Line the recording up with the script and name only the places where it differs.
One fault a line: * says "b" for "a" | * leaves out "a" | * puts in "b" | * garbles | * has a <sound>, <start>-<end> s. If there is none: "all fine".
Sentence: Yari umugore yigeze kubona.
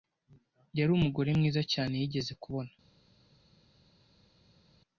* puts in "mwiza cyane"